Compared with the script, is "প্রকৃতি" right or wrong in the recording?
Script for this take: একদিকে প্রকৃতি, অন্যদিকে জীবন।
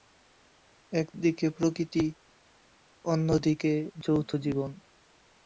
right